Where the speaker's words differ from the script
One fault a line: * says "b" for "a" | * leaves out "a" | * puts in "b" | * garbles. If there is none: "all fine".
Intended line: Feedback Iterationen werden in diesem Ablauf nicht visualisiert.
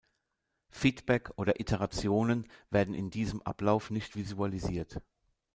* puts in "oder"